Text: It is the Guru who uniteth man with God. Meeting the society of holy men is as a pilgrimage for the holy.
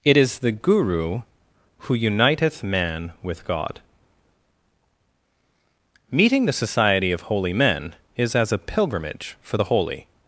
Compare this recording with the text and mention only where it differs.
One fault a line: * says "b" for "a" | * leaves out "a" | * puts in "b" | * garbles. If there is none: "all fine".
all fine